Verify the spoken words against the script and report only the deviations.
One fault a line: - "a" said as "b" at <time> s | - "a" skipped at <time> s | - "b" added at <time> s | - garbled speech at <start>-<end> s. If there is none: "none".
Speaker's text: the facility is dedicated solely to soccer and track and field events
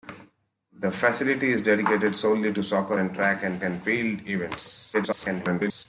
- "and" added at 3.6 s
- garbled speech at 4.9-5.9 s